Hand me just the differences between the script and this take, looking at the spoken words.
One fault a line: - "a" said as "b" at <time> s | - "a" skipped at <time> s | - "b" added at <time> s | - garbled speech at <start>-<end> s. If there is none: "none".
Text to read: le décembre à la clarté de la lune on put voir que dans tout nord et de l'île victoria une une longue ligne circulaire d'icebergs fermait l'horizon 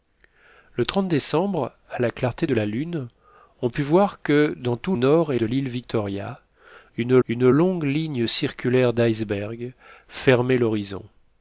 none